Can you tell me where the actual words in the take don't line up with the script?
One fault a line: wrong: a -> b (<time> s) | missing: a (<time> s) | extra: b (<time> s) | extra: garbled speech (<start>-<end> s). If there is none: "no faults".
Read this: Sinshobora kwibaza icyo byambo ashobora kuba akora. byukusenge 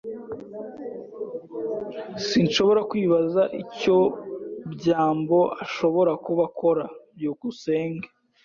no faults